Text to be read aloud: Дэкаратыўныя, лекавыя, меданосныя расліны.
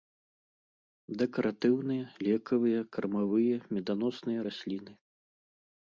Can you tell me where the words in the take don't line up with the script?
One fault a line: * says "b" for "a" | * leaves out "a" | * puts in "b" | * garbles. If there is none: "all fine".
* puts in "кармавыя"